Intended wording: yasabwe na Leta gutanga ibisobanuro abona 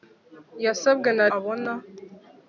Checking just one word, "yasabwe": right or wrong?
right